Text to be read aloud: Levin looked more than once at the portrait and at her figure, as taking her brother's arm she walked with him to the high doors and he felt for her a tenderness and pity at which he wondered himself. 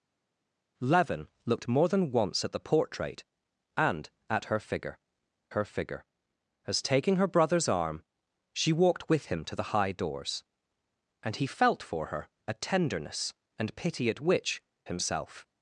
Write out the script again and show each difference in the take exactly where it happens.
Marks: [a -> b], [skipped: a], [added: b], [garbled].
Levin looked more than once at the portrait and at her figure, [added: her figure] as taking her brother's arm she walked with him to the high doors and he felt for her a tenderness and pity at which [skipped: he wondered] himself.